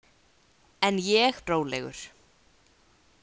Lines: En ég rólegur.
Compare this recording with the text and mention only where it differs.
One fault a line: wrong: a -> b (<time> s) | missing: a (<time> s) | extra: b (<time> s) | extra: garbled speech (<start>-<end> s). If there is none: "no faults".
no faults